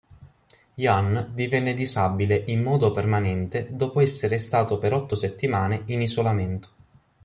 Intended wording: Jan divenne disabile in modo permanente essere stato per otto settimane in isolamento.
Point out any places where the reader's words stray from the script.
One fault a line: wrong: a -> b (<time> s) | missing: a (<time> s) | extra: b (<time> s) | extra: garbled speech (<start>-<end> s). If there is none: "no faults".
extra: dopo (3.7 s)